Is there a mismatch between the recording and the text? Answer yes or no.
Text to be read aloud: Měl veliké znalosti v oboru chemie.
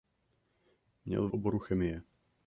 yes